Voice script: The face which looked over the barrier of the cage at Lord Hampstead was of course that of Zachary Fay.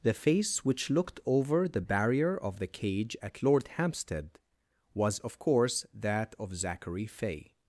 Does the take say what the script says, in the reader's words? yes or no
yes